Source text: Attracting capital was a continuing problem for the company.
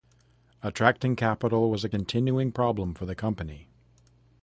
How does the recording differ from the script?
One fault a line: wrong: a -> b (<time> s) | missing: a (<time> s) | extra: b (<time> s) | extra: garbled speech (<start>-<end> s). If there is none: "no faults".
no faults